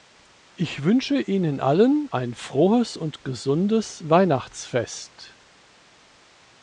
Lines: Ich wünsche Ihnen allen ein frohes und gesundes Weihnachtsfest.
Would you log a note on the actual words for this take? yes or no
no